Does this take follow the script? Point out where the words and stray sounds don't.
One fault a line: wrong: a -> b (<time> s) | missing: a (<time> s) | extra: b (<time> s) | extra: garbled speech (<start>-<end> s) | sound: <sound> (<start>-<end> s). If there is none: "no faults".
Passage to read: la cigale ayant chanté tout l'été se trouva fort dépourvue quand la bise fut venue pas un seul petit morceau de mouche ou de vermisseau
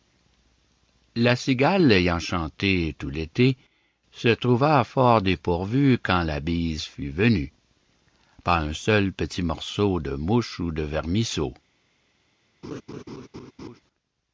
sound: laugh (12.6-13.8 s)